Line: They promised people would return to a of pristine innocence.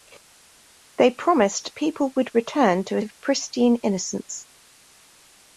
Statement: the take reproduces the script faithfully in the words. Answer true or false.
true